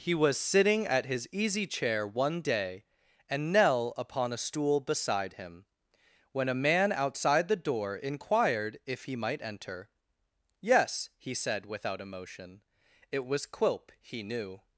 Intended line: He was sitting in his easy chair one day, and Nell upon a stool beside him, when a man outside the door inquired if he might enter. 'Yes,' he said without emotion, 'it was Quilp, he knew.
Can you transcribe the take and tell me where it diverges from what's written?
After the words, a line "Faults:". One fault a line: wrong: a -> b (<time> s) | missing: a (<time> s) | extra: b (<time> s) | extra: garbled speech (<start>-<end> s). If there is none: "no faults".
He was sitting at his easy chair one day, and Nell upon a stool beside him, when a man outside the door inquired if he might enter. 'Yes,' he said without emotion, 'it was Quilp, he knew.
Faults:
wrong: in -> at (0.9 s)